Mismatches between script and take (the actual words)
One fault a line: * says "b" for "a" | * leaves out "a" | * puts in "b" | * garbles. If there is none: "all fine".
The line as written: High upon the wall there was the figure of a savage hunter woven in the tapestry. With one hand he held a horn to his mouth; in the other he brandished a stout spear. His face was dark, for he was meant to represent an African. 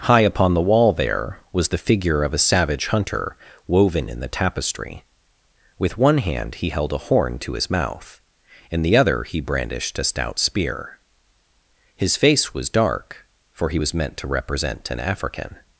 all fine